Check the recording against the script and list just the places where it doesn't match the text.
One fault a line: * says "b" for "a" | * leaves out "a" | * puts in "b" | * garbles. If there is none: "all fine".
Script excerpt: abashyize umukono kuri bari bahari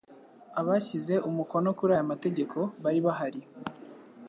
* puts in "aya mategeko"